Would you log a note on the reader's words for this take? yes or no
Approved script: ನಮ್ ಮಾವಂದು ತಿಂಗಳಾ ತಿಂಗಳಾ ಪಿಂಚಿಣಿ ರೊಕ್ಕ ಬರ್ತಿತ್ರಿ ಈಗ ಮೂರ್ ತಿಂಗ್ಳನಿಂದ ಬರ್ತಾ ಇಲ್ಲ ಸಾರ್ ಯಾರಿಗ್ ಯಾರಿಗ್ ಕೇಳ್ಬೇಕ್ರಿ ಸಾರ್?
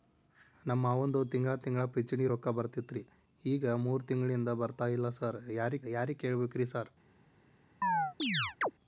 no